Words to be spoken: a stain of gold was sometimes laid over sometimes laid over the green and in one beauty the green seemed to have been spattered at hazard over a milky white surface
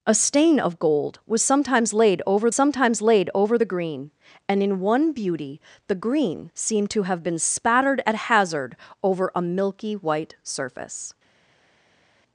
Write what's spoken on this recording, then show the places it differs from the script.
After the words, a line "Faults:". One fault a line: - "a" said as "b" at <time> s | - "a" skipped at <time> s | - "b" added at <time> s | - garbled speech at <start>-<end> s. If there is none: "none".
a stain of gold was sometimes laid over sometimes laid over the green and in one beauty the green seemed to have been spattered at hazard over a milky white surface
Faults:
none